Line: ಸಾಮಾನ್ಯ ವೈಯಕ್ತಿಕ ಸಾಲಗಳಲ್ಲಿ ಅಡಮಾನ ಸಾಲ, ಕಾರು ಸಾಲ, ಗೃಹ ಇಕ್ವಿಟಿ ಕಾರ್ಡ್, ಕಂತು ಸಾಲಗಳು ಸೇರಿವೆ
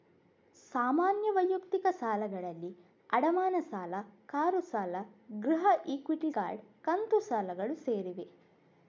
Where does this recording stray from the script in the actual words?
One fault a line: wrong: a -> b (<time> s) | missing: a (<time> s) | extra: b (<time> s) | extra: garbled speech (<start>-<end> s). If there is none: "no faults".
no faults